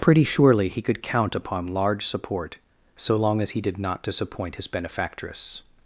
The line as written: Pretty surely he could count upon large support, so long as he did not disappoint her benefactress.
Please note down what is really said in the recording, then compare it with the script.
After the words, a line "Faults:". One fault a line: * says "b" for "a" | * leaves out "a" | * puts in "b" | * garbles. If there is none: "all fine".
Pretty surely he could count upon large support, so long as he did not disappoint his benefactress.
Faults:
* says "his" for "her"